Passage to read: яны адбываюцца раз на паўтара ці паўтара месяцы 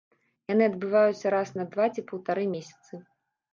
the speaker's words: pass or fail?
fail